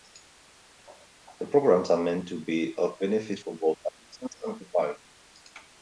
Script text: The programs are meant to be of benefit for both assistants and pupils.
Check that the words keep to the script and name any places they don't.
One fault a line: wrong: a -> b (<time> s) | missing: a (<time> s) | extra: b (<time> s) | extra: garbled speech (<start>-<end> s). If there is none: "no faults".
no faults